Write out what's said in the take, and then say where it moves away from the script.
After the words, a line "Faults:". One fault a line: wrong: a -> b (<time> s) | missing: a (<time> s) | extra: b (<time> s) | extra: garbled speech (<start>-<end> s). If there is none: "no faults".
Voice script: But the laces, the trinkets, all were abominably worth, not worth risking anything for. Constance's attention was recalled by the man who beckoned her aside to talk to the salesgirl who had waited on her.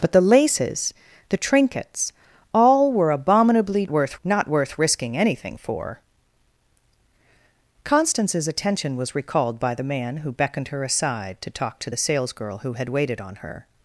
But the laces, the trinkets, all were abominably worth, not worth risking anything for. Constance's attention was recalled by the man who beckoned her aside to talk to the salesgirl who had waited on her.
Faults:
no faults